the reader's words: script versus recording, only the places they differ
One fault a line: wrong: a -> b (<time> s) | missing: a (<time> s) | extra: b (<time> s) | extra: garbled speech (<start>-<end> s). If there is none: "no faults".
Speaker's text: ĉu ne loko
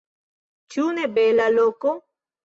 extra: bela (1.2 s)